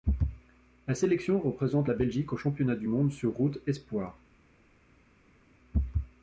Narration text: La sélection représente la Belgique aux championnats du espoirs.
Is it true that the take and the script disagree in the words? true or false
true